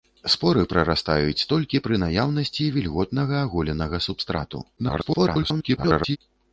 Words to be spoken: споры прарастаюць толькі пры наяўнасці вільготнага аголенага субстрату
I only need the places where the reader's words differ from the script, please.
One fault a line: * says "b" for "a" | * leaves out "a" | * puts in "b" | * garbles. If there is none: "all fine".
* garbles